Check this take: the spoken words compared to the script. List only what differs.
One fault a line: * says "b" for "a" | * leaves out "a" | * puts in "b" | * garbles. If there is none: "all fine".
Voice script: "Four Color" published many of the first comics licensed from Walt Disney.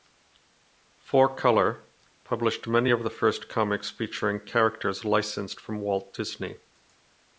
* puts in "featuring characters"